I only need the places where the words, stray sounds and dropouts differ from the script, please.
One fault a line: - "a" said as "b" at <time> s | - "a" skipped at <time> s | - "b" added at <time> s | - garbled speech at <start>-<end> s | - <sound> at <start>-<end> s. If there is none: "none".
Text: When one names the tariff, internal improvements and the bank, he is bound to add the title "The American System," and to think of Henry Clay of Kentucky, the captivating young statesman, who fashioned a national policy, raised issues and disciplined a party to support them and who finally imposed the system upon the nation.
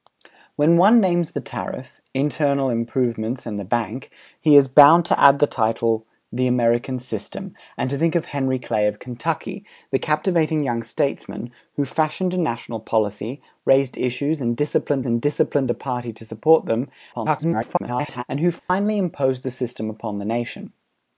- "and disciplined" added at 15.1 s
- garbled speech at 17.1-18.2 s
- dropout at 18.6-18.7 s